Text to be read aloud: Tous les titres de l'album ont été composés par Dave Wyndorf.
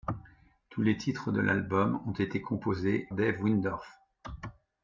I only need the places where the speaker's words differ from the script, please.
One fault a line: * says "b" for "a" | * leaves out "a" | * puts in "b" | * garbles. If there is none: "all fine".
* leaves out "par"